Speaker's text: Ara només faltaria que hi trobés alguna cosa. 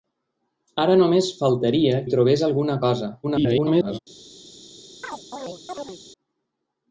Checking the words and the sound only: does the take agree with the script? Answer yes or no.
no